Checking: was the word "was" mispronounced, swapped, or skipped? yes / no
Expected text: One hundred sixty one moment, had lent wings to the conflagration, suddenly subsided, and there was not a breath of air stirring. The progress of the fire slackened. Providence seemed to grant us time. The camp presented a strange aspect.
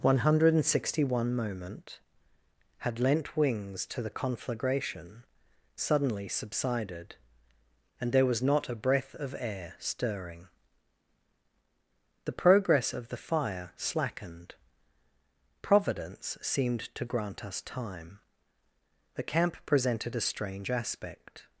no